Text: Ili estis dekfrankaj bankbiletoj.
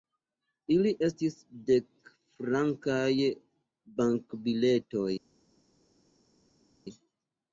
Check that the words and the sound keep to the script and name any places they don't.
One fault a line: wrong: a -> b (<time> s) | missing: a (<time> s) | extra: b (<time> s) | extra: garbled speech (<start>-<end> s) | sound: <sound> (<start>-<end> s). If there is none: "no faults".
no faults